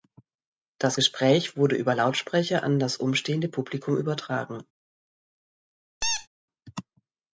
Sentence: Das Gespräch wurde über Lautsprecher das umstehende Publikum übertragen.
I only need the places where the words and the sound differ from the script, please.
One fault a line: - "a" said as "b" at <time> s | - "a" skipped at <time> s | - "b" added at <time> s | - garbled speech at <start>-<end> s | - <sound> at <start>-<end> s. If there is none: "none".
- "an" added at 2.6 s
- squeak at 6.0-6.3 s